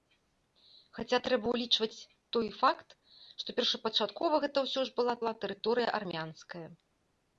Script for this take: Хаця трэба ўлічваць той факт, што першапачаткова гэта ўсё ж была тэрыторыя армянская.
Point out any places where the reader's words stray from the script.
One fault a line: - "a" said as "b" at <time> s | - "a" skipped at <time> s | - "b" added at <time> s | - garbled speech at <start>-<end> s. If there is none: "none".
- "была" added at 5.2 s